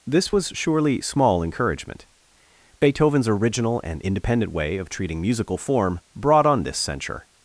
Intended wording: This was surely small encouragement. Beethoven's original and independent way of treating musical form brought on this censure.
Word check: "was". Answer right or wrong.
right